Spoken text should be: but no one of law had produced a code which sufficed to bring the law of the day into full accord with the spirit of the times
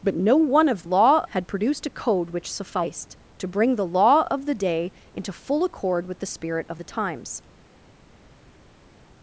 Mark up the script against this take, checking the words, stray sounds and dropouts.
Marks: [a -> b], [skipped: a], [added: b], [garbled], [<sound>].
but no one of law had produced a code which sufficed to bring the law of the day into full accord with the spirit of the times